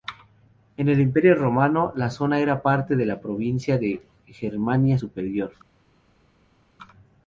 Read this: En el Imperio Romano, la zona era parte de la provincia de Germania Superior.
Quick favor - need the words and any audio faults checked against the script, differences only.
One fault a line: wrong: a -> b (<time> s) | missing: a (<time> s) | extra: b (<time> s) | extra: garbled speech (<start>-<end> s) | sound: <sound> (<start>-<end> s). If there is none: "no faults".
no faults